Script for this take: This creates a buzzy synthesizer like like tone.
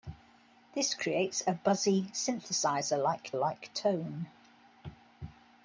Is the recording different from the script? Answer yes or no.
no